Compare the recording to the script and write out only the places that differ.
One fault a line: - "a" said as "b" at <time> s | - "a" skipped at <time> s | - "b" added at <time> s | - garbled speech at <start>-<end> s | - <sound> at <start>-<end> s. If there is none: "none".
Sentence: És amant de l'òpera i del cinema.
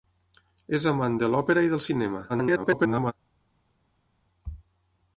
- garbled speech at 2.3-3.1 s